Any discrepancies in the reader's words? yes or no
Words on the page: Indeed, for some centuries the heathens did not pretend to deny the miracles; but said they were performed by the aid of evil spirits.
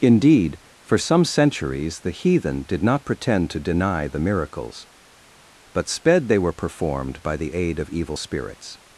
yes